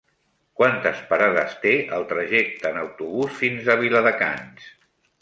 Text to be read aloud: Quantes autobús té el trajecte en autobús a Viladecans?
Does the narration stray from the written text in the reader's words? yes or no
yes